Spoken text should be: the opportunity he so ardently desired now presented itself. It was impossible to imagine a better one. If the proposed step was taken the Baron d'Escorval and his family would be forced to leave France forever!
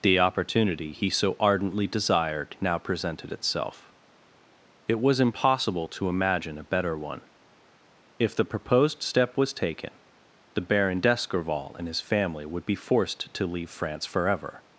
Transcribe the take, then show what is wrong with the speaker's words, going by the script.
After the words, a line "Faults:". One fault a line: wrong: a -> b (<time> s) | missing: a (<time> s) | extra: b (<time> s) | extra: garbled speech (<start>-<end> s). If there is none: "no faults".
the opportunity he so ardently desired now presented itself. It was impossible to imagine a better one. If the proposed step was taken the Baron d'Escorval and his family would be forced to leave France forever!
Faults:
no faults